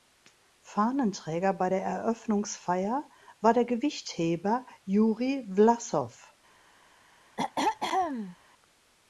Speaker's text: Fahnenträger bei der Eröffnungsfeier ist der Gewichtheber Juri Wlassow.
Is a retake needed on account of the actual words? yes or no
yes